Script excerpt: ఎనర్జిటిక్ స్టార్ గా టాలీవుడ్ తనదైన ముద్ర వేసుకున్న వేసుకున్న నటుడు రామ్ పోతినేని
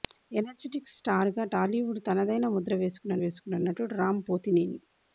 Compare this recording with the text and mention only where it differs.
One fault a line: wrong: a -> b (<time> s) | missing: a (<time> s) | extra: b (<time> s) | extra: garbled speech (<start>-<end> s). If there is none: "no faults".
no faults